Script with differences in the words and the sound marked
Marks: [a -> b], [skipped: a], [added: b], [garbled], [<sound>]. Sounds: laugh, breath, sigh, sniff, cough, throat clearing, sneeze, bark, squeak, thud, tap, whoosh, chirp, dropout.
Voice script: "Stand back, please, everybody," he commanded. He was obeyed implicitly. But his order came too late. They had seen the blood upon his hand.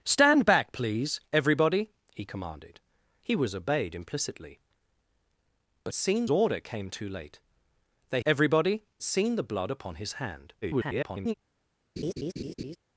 "Stand back, please, everybody," he commanded. He was obeyed implicitly. But [his -> seen] order came too late. They [had -> everybody] seen the blood upon his hand. [garbled] [laugh]